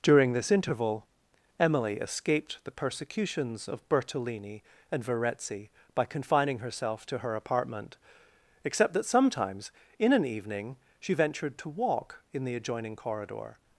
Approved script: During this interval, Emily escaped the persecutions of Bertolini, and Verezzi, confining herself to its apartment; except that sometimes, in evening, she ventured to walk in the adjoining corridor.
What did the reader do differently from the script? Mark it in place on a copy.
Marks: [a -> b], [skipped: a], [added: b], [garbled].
During this interval, Emily escaped the persecutions of Bertolini, and Verezzi, [added: by] confining herself to [its -> her] apartment; except that sometimes, in [added: an] evening, she ventured to walk in the adjoining corridor.